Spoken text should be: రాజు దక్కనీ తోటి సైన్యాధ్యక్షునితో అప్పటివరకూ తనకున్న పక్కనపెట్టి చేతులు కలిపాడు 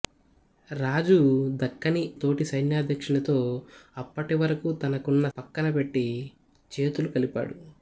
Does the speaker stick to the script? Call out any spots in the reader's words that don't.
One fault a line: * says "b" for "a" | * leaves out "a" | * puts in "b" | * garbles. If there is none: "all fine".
all fine